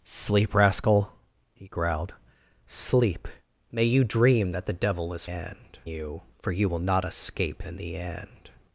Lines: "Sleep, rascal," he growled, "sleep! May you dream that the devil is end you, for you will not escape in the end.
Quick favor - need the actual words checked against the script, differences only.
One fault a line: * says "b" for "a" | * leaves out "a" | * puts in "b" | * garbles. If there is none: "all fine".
all fine